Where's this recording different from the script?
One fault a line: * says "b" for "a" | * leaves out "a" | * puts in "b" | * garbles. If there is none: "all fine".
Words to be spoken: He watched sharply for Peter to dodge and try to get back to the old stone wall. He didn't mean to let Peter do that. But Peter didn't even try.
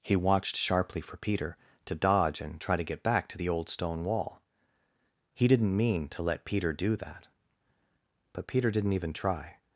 all fine